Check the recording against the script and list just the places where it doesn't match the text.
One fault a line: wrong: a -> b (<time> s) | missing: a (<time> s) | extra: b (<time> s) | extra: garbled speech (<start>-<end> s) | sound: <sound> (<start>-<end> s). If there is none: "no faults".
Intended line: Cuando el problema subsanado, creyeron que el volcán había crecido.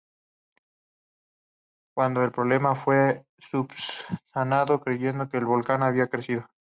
extra: fue (2.7 s)